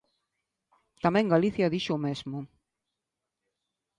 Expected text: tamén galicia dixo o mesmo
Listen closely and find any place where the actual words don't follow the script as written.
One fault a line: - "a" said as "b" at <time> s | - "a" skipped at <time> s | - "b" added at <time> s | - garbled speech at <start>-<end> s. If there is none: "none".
none